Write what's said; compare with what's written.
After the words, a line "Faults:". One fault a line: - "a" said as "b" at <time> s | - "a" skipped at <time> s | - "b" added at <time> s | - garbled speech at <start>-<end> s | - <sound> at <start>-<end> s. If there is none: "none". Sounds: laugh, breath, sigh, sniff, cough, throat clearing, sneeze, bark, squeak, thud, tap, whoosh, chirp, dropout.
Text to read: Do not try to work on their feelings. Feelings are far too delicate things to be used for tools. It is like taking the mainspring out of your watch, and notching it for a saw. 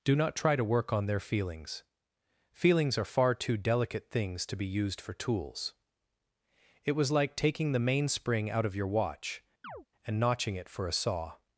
Do not try to work on their feelings. Feelings are far too delicate things to be used for tools. It was like taking the mainspring out of your watch, and notching it for a saw.
Faults:
- "is" said as "was" at 6.9 s
- chirp at 9.6-9.9 s